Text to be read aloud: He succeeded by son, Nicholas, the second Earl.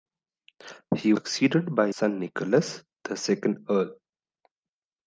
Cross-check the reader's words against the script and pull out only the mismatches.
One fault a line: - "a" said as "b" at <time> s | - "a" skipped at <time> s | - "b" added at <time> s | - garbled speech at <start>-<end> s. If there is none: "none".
none